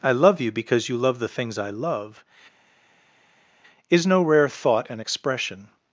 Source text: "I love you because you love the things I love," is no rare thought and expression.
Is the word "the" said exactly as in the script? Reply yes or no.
yes